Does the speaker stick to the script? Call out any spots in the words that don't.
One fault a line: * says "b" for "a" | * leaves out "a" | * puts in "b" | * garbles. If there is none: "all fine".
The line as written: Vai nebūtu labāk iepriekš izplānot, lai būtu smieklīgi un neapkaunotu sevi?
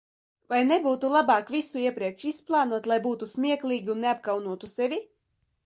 * puts in "visu"